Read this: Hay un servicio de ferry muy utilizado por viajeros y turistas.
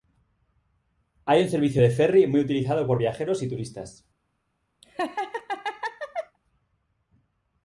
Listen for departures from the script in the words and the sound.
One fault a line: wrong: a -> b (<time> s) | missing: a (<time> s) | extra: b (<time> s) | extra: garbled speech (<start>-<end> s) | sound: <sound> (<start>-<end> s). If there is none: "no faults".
sound: laugh (4.8-6.4 s)